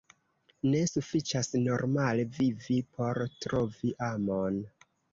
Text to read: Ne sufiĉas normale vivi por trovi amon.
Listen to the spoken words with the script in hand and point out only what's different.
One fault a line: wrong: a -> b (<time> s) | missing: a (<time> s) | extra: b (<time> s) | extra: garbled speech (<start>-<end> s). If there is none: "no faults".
no faults